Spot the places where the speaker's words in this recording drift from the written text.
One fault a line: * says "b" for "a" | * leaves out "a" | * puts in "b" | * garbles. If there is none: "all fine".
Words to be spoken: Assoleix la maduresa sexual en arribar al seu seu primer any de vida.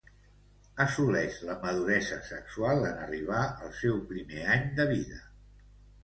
* leaves out "seu"